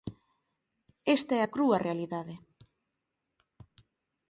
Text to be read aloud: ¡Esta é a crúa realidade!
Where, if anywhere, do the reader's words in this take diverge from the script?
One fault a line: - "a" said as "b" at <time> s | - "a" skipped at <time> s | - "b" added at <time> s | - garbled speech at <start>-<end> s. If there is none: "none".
none